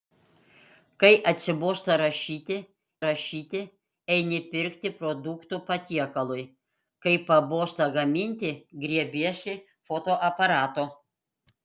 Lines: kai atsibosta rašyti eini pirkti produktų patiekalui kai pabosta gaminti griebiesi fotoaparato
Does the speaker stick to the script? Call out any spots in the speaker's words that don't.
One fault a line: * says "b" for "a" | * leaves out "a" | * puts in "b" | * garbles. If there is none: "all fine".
* puts in "rašyti"